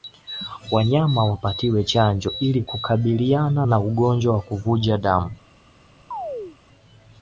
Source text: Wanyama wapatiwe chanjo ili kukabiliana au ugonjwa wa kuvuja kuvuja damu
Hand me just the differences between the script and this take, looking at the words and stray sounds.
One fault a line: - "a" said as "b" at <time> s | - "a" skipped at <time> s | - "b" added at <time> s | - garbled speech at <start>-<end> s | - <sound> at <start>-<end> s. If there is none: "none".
- "au" said as "na" at 3.6 s
- "kuvuja" skipped at 5.0 s
- chirp at 6.1-6.6 s